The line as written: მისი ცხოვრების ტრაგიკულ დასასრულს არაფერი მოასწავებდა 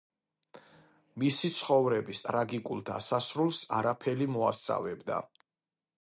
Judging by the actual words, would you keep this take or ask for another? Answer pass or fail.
pass